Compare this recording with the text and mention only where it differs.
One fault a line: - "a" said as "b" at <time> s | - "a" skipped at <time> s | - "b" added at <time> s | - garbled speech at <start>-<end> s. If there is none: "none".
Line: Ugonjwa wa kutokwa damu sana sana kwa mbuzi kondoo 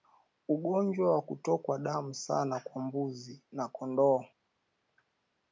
- "sana" skipped at 2.6 s
- "na" added at 3.5 s